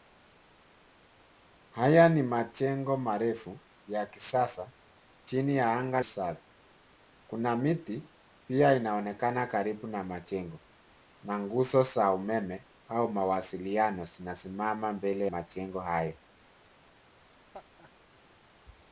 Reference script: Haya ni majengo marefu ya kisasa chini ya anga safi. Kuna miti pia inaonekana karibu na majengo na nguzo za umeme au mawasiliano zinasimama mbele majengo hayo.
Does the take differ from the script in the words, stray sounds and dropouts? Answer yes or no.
yes